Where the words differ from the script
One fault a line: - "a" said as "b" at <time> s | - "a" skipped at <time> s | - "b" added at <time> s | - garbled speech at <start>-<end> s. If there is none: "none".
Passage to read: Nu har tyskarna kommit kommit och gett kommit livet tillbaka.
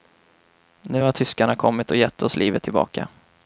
- "kommit" skipped at 1.9 s
- "kommit" said as "oss" at 2.2 s